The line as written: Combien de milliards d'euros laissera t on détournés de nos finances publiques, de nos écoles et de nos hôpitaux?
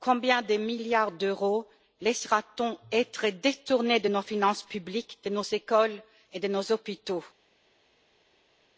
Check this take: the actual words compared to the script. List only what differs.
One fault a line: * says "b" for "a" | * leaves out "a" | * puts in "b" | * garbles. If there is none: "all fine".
* puts in "être"